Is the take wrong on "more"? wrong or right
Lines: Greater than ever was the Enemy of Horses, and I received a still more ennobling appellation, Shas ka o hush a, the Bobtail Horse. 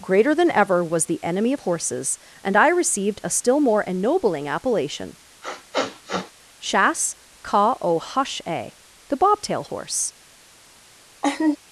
right